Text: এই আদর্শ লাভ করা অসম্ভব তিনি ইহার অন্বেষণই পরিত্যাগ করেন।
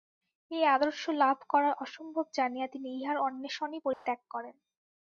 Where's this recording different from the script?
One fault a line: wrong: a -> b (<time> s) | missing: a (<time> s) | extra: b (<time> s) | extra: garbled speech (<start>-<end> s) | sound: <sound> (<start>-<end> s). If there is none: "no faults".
extra: জানিয়া (2.3 s)
sound: dropout (3.9-4.1 s)